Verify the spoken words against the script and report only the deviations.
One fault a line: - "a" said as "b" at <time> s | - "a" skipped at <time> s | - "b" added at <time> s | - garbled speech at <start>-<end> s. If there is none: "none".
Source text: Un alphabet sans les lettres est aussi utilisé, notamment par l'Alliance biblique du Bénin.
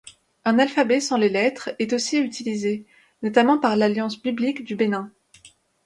none